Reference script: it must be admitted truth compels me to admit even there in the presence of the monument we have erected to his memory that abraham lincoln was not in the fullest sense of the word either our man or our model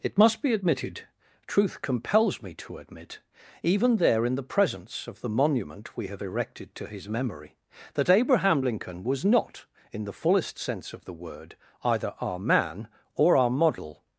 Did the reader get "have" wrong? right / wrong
right